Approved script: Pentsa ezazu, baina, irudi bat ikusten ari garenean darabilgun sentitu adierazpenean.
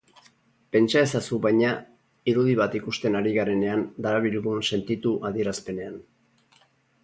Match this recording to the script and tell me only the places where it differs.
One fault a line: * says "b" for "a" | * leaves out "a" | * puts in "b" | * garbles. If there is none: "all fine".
all fine